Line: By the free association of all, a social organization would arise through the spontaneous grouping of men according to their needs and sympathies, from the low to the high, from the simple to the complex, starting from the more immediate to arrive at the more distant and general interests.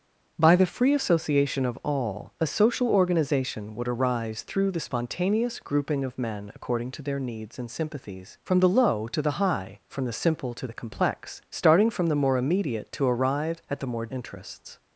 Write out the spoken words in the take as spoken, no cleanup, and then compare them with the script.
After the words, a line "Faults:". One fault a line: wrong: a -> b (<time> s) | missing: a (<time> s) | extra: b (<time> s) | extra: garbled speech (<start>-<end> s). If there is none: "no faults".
By the free association of all, a social organization would arise through the spontaneous grouping of men according to their needs and sympathies, from the low to the high, from the simple to the complex, starting from the more immediate to arrive at the more interests.
Faults:
missing: distant and general (14.1 s)